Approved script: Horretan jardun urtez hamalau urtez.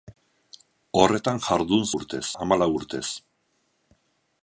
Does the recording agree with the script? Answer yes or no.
yes